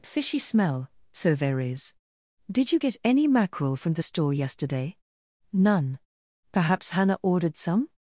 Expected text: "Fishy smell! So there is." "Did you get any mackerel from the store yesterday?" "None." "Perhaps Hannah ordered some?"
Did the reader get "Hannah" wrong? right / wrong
right